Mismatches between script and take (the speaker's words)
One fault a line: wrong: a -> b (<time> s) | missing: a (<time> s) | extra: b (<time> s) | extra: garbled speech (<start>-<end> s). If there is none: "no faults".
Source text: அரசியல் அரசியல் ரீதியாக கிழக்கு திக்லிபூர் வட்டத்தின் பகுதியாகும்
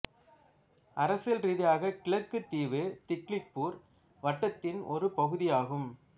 missing: அரசியல் (1.4 s)
extra: தீவு (2.5 s)
extra: ஒரு (4.9 s)